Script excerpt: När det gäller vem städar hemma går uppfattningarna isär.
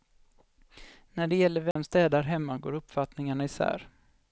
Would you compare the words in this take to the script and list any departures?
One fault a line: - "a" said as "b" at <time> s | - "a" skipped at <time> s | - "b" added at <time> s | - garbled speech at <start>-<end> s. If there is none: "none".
none